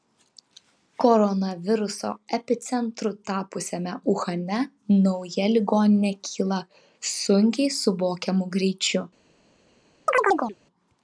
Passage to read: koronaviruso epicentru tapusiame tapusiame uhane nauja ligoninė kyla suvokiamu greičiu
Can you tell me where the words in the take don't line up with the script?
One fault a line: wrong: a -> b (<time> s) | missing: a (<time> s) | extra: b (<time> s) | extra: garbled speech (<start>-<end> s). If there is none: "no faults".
missing: tapusiame (3.9 s)
extra: sunkiai (7.1 s)